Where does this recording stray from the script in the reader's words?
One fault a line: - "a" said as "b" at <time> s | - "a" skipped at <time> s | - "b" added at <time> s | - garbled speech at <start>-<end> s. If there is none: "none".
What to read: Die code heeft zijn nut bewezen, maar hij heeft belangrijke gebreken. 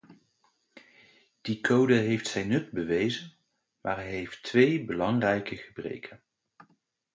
- "twee" added at 4.4 s